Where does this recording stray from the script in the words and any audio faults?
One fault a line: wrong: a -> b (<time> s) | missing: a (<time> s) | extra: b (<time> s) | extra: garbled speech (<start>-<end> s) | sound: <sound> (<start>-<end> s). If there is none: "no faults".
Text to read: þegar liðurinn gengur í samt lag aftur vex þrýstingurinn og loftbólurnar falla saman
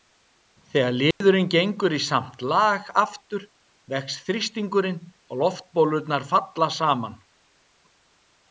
sound: dropout (1.1-1.2 s)